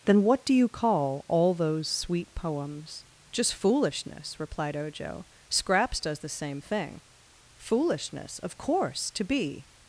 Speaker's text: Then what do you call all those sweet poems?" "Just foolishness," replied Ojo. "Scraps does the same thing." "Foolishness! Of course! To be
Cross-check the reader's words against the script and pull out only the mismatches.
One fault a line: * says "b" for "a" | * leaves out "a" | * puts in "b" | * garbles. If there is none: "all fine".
all fine